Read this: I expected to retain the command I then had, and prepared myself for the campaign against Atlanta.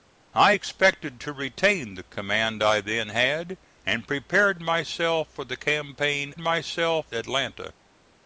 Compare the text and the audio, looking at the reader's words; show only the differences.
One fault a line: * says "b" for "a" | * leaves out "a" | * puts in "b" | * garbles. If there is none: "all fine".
* says "myself" for "against"